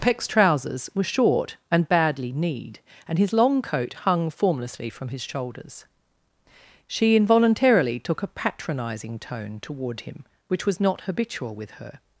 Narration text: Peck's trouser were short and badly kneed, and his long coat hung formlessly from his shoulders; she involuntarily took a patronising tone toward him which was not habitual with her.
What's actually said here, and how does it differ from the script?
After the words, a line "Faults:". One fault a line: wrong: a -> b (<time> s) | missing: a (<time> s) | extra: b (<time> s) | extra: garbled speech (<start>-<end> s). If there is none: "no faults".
Peck's trousers were short and badly kneed, and his long coat hung formlessly from his shoulders; she involuntarily took a patronising tone toward him which was not habitual with her.
Faults:
wrong: trouser -> trousers (0.3 s)